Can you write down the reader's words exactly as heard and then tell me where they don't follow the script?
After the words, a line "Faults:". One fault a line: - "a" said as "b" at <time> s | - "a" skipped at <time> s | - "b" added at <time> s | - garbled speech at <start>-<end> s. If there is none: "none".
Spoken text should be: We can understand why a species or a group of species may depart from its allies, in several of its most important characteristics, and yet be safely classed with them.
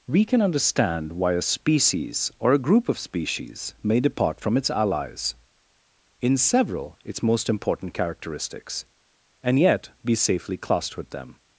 We can understand why a species or a group of species may depart from its allies, in several its most important characteristics, and yet be safely classed with them.
Faults:
- "of" skipped at 7.0 s